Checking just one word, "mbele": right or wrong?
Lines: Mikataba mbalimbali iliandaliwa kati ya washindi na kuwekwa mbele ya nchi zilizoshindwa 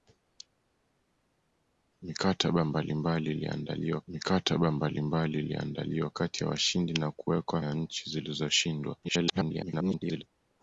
wrong